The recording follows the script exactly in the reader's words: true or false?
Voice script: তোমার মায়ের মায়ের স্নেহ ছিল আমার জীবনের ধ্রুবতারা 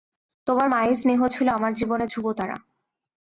false